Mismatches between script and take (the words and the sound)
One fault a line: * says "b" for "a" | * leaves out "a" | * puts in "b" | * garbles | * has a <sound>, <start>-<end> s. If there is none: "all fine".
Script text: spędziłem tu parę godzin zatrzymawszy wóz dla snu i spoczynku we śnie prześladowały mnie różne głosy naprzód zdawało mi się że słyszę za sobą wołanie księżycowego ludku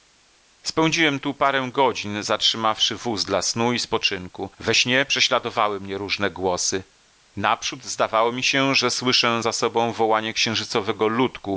all fine